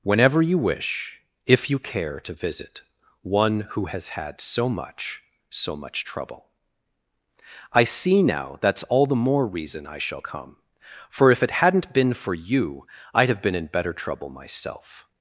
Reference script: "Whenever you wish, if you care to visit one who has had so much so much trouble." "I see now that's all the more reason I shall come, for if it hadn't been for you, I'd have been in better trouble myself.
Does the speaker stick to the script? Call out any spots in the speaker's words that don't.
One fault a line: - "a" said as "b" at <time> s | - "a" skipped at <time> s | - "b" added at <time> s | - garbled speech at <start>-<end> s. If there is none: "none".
none